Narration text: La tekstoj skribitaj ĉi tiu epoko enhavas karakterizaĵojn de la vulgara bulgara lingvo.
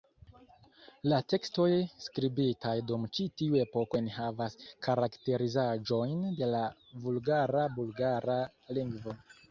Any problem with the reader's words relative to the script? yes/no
yes